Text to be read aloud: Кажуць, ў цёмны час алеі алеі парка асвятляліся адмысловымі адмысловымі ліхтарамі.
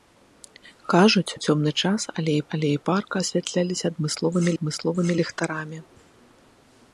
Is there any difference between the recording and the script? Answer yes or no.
no